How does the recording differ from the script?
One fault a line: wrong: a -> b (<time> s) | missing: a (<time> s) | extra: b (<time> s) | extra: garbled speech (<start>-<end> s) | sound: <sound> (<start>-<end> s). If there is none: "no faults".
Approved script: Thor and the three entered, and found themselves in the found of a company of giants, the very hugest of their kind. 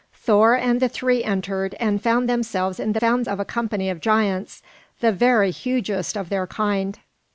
no faults